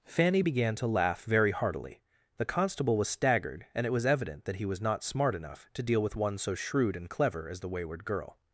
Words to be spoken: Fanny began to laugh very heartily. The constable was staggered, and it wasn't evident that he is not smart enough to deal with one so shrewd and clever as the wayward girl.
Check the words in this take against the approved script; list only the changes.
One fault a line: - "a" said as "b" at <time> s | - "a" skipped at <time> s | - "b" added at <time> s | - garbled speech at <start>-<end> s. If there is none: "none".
- "wasn't" said as "was" at 3.9 s
- "is" said as "was" at 4.7 s